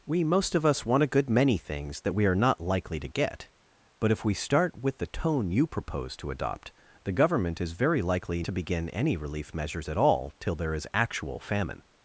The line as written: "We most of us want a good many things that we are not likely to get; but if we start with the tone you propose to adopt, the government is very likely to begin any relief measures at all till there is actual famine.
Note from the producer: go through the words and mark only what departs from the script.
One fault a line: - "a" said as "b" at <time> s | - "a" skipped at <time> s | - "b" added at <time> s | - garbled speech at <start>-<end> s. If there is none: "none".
none